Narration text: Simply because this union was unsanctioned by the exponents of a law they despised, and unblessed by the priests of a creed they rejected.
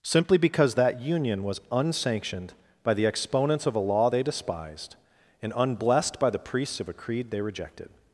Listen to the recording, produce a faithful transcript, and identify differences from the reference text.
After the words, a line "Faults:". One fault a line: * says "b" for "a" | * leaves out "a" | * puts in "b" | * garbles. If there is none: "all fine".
Simply because that union was unsanctioned by the exponents of a law they despised, and unblessed by the priests of a creed they rejected.
Faults:
* says "that" for "this"